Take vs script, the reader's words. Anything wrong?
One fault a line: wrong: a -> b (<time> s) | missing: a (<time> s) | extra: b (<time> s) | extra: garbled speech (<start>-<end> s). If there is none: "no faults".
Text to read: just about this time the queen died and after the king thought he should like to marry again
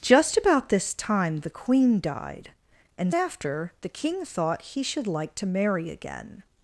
no faults